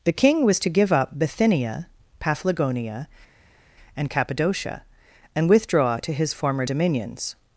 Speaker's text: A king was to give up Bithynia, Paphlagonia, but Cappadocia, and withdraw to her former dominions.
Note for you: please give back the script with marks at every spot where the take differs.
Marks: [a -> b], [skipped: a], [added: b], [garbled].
[A -> The] king was to give up Bithynia, Paphlagonia, [but -> and] Cappadocia, and withdraw to [her -> his] former dominions.